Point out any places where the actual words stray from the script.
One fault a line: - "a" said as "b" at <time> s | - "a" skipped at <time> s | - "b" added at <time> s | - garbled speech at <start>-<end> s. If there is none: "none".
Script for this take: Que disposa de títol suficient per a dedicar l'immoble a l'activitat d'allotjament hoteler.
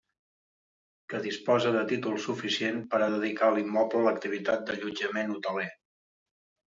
none